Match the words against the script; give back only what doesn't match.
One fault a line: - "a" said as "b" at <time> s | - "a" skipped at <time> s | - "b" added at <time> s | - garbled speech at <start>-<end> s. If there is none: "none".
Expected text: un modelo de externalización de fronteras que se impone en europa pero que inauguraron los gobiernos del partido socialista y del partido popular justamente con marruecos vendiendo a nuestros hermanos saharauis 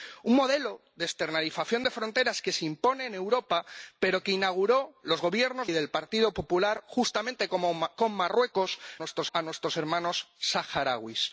- "del partido socialista" skipped at 5.7 s
- "vendiendo" said as "nuestros" at 9.0 s